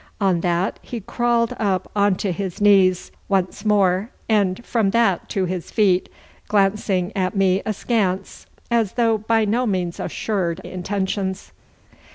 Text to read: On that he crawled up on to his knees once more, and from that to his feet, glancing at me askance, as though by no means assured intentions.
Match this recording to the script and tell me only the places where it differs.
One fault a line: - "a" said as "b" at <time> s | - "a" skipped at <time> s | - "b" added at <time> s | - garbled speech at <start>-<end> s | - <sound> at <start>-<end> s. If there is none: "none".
none